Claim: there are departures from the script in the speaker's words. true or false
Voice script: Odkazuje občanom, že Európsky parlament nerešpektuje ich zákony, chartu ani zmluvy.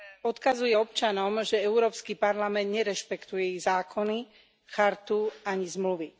false